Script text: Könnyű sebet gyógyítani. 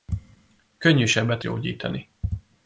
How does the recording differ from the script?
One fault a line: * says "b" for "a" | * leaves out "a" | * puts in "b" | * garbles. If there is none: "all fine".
all fine